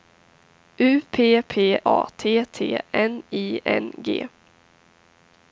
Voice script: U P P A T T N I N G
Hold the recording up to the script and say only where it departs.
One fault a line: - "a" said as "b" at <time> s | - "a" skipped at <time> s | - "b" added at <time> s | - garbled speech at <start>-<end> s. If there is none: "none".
none